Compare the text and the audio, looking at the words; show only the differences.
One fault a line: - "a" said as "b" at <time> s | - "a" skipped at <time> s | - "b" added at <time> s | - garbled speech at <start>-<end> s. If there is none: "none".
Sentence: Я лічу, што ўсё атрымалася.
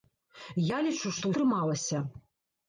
- "ўсё" skipped at 1.2 s